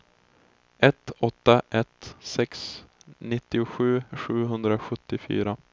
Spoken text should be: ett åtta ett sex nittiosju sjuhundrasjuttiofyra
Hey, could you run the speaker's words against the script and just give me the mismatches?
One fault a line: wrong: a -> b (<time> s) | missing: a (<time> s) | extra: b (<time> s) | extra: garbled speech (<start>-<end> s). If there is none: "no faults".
no faults